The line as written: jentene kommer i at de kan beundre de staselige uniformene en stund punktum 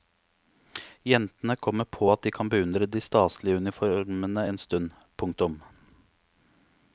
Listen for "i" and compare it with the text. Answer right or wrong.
wrong